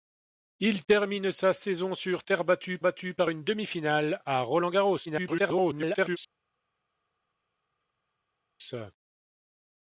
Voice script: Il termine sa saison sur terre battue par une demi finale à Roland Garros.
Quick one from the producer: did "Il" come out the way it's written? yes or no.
yes